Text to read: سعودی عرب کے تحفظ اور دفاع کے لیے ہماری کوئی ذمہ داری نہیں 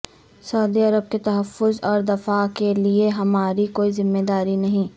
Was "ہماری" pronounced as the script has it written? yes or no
yes